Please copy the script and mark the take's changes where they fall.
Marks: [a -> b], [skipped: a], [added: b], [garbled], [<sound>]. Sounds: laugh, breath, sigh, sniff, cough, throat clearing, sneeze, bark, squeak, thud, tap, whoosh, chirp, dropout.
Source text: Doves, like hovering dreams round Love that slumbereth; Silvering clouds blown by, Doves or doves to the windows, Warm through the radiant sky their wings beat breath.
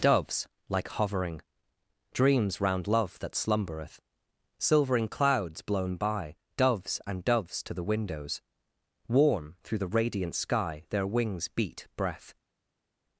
Doves, like hovering dreams round Love that slumbereth; Silvering clouds blown by, Doves [or -> and] doves to the windows, Warm through the radiant sky their wings beat breath.